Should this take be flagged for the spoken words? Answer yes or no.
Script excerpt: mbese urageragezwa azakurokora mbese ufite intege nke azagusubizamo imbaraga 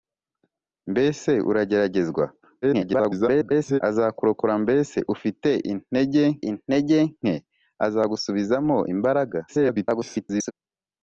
yes